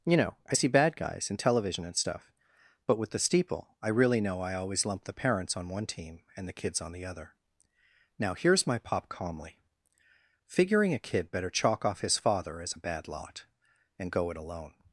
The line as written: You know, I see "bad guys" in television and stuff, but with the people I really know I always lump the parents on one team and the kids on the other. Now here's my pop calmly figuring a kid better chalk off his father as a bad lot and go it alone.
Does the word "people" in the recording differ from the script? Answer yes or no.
yes